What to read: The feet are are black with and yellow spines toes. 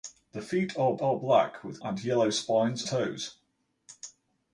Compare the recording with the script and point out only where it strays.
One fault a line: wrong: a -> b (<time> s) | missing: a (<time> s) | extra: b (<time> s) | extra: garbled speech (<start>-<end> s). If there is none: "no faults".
no faults